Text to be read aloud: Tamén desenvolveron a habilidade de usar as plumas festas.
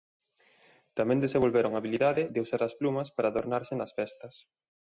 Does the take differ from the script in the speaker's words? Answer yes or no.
yes